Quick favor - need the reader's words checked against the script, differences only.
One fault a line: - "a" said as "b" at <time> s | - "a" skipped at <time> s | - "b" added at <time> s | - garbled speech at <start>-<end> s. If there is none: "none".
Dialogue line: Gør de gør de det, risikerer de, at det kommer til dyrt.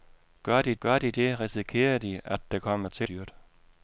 none